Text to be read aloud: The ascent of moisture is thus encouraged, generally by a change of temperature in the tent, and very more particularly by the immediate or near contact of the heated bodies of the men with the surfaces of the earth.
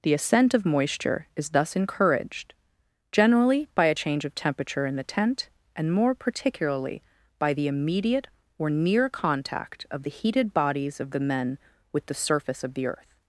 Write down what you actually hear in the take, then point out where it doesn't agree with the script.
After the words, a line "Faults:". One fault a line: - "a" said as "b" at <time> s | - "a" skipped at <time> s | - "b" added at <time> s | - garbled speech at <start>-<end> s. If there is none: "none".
The ascent of moisture is thus encouraged, generally by a change of temperature in the tent, and more particularly by the immediate or near contact of the heated bodies of the men with the surface of the earth.
Faults:
- "very" skipped at 5.9 s
- "surfaces" said as "surface" at 12.1 s